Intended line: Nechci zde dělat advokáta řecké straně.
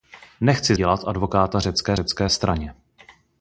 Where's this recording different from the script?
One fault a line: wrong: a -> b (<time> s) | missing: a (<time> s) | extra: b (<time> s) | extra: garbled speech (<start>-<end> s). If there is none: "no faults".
missing: zde (0.8 s)
extra: řecké (1.9 s)